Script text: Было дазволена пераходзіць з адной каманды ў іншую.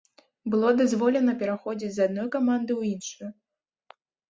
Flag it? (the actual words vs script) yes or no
no